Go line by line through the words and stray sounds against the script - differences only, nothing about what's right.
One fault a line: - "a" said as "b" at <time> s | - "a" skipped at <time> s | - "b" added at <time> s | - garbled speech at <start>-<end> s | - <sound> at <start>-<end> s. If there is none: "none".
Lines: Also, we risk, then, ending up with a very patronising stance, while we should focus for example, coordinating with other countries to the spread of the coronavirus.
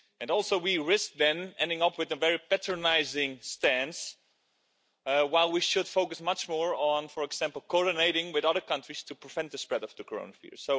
- "much more on" added at 6.2 s
- "prevent" added at 9.1 s